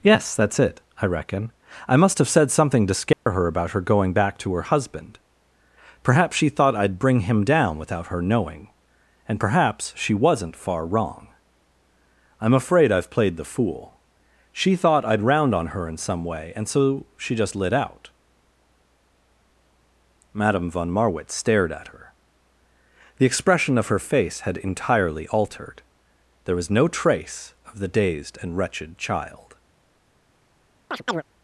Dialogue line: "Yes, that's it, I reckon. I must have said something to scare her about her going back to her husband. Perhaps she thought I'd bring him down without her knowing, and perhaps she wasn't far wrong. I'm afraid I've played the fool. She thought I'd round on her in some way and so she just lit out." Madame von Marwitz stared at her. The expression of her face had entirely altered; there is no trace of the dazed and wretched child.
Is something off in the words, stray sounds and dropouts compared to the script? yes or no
yes